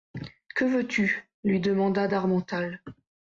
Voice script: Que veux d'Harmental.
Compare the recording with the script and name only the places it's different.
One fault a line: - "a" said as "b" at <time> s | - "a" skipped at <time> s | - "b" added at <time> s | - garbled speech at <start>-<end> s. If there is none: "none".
- "tu lui demanda" added at 0.9 s